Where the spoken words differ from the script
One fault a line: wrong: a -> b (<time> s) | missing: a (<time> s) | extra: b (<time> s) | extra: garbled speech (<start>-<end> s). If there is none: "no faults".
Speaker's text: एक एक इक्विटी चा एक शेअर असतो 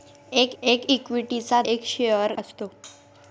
no faults